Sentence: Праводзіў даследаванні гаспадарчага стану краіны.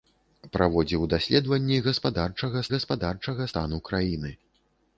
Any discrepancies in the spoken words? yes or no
yes